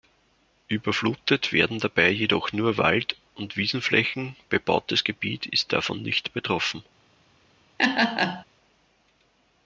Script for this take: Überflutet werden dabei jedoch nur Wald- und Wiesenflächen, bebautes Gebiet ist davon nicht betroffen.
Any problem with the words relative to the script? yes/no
no